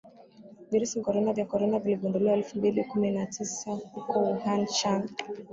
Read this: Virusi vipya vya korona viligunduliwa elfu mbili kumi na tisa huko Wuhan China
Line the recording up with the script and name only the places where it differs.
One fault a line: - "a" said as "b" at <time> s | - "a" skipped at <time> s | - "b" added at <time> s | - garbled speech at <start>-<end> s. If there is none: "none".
- "vipya" said as "korona" at 1.0 s